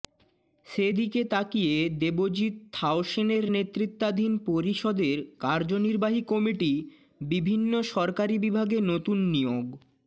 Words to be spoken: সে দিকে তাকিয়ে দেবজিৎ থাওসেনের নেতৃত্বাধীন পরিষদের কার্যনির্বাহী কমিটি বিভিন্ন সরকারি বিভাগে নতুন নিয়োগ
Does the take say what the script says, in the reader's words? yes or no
yes